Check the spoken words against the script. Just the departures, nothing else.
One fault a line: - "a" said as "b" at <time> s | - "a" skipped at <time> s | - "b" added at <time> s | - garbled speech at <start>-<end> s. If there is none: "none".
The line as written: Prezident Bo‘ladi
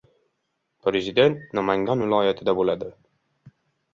- "Namangan viloyatida" added at 1.6 s